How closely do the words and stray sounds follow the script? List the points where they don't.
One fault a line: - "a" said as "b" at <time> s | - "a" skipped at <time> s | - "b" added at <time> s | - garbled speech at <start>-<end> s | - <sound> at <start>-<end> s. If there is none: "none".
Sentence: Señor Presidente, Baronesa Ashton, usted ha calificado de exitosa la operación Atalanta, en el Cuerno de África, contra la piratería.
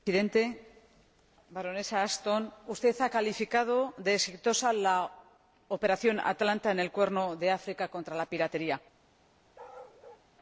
- bark at 9.5-10.3 s